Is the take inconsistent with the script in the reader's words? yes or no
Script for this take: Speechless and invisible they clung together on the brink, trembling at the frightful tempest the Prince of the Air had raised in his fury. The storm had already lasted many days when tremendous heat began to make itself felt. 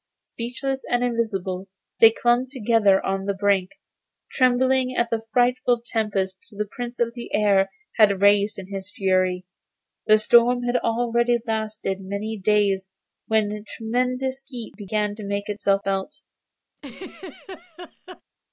no